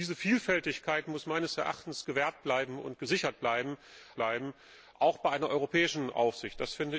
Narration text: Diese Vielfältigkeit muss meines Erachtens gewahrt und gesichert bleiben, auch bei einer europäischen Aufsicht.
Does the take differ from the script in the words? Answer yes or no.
yes